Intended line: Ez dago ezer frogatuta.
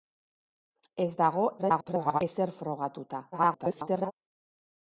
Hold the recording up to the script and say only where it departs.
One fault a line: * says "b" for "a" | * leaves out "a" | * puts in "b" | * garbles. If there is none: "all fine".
* garbles
* garbles